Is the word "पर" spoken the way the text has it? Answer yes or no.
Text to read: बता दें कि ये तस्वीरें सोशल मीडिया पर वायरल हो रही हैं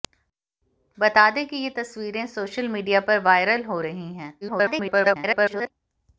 yes